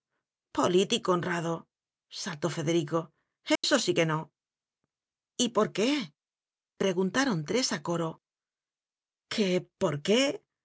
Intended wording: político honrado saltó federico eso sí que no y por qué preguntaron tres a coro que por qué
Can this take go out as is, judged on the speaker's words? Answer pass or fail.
pass